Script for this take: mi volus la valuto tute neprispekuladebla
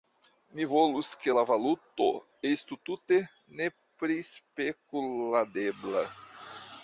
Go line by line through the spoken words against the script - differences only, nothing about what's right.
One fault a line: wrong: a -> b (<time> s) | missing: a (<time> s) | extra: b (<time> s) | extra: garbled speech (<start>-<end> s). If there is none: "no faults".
extra: ke (1.2 s)
extra: estu (2.5 s)